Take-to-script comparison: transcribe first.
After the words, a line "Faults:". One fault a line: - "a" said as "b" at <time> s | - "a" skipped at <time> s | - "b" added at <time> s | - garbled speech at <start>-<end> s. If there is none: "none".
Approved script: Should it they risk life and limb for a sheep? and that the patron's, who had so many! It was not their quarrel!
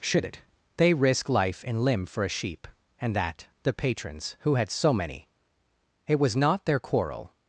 Should it they risk life and limb for a sheep? and that the patron's, who had so many! It was not their quarrel!
Faults:
none